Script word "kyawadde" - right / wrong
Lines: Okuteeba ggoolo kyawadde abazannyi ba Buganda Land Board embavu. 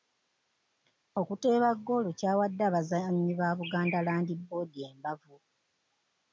right